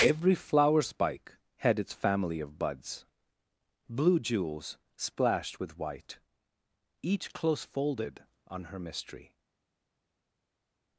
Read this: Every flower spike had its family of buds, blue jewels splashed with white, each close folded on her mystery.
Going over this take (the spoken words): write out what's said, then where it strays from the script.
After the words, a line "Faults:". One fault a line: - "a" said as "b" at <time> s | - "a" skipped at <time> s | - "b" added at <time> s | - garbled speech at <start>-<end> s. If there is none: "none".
Every flower spike had its family of buds, blue jewels splashed with white, each close folded on her mystery.
Faults:
none